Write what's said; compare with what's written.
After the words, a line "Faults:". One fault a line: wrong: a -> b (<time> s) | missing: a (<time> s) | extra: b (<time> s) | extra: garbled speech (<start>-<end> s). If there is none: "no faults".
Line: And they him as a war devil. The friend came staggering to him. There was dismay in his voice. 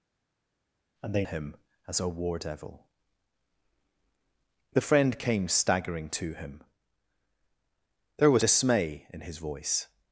And they him as a war devil. The friend came staggering to him. There was dismay in his voice.
Faults:
no faults